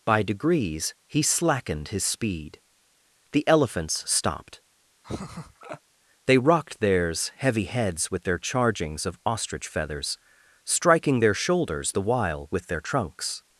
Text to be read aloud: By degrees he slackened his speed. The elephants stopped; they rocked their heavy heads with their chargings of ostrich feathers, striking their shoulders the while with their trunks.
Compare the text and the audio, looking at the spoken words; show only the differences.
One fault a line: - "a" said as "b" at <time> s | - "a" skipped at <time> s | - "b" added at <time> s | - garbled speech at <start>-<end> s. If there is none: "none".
- "their" said as "theirs" at 6.8 s